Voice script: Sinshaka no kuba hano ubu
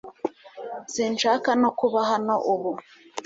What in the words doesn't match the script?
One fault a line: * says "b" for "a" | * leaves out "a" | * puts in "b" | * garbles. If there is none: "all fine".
all fine